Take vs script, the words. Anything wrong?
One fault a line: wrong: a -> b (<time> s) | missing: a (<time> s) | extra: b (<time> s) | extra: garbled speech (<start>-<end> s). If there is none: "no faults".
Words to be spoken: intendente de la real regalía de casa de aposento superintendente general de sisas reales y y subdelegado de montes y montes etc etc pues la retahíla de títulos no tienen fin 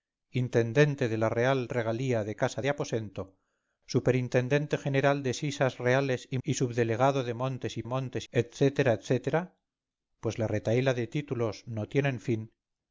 no faults